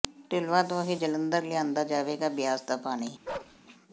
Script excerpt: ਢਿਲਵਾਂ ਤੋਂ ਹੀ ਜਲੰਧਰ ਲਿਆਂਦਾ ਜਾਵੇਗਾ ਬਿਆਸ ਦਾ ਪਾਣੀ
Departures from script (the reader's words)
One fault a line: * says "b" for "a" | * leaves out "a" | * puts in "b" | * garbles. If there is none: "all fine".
all fine